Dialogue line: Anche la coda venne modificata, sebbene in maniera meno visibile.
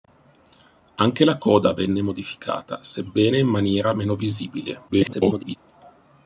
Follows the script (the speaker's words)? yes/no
no